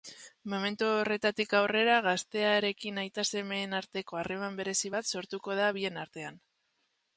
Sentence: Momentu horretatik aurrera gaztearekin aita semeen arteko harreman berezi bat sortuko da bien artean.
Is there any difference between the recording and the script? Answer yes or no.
no